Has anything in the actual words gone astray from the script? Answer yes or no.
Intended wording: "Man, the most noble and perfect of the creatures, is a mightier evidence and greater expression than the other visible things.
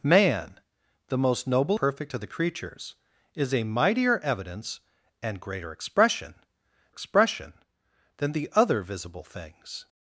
yes